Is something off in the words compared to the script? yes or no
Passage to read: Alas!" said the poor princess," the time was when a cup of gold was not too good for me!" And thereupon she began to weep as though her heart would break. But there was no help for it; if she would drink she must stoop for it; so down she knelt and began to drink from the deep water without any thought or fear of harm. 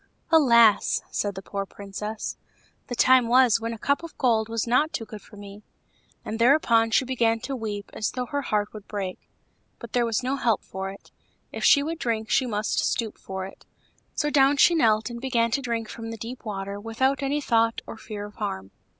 no